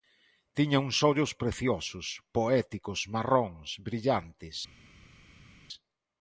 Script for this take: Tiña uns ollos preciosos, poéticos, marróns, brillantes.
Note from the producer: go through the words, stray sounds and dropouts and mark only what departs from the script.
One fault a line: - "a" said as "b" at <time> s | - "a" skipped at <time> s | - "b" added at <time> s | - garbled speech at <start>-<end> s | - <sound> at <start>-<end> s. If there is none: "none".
none